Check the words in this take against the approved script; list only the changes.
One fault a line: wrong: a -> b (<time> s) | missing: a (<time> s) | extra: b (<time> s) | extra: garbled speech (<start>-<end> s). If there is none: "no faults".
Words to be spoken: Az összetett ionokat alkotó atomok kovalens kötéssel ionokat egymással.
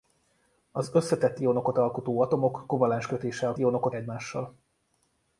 no faults